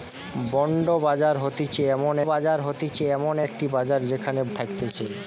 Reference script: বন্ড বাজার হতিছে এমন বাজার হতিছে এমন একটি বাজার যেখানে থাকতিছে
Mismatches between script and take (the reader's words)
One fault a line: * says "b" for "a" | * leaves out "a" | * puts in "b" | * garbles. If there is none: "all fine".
all fine